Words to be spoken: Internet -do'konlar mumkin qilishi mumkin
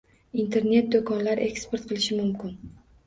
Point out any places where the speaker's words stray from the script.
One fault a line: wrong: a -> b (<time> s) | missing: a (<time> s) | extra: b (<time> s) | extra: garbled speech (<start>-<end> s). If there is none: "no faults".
wrong: mumkin -> eksport (1.5 s)